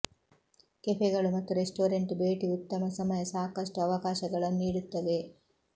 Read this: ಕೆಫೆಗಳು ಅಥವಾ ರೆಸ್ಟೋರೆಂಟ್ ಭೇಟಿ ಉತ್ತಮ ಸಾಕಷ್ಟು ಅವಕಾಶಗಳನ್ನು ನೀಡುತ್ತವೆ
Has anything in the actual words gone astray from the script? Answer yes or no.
yes